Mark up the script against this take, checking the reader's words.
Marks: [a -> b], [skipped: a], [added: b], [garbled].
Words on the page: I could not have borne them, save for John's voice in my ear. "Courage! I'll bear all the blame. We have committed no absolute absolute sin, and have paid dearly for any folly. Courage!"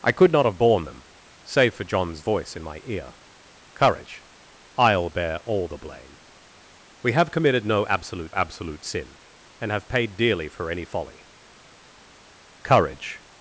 I could not have borne them, save for John's voice in my ear. "Courage! I'll bear all the blame. We have committed no absolute absolute sin, and have paid dearly for any folly. Courage!"